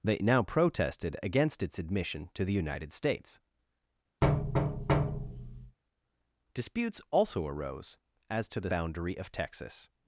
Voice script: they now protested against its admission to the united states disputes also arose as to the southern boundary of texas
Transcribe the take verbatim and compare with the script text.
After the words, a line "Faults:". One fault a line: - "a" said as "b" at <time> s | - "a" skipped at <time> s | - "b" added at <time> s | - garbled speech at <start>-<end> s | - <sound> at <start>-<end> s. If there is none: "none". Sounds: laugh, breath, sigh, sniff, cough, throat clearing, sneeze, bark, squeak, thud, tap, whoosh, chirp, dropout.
they now protested against its admission to the united states disputes also arose as to the boundary of texas
Faults:
- thud at 4.2-5.8 s
- "southern" skipped at 8.7 s